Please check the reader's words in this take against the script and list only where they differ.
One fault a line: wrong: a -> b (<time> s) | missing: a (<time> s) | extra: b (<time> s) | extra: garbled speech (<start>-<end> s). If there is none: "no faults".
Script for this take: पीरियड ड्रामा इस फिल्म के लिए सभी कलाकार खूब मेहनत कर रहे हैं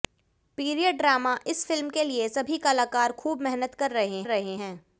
extra: रहे (4.3 s)